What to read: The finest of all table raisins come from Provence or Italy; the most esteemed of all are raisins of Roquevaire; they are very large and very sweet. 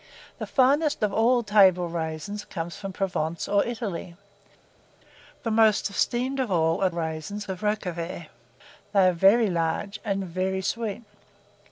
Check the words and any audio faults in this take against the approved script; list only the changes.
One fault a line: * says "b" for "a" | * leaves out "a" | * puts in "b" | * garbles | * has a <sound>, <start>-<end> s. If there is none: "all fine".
all fine